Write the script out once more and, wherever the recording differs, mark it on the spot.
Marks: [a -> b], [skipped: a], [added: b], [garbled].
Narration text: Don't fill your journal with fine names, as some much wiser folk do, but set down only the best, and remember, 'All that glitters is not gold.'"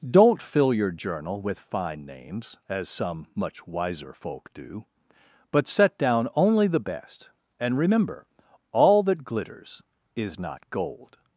Don't fill your journal with fine names, as some much wiser folk do, but set down only the best, and remember, 'All that glitters is not gold.'"